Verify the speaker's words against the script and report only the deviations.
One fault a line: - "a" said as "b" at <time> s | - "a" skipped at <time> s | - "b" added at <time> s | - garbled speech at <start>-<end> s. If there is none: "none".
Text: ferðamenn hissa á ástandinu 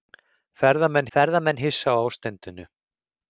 - "ferðamenn" added at 1.1 s